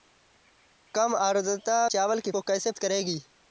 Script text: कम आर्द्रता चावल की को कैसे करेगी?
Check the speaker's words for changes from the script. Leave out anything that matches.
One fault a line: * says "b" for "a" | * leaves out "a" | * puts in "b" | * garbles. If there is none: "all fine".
all fine